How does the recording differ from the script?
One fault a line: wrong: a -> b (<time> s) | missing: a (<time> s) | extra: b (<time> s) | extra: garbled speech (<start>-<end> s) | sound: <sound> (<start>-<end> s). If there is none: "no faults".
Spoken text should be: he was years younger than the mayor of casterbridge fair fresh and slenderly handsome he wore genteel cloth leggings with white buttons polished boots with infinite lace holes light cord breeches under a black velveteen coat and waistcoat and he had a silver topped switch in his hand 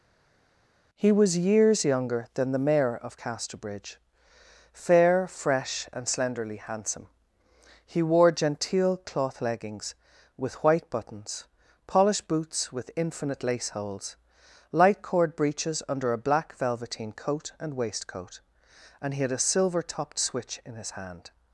no faults